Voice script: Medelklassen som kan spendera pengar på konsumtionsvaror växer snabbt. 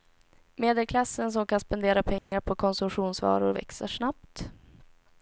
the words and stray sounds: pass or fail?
fail